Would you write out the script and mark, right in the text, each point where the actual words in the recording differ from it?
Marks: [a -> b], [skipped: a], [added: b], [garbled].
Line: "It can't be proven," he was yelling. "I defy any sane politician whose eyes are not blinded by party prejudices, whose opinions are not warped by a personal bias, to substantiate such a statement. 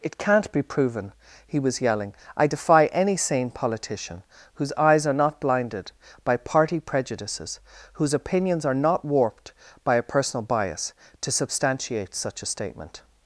"It can't be proven," he was yelling. "I defy any sane politician whose eyes are not blinded by party prejudices, whose opinions are not warped by a personal bias, to substantiate such a statement.